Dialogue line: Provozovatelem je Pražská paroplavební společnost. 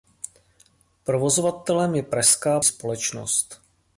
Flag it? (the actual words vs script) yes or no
yes